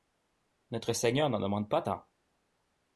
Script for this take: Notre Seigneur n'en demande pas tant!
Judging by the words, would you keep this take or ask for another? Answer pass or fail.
pass